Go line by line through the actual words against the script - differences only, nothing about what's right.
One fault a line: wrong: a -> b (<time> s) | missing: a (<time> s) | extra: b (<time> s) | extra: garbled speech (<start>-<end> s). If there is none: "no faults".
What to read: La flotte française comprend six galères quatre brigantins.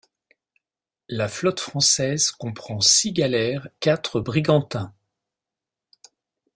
no faults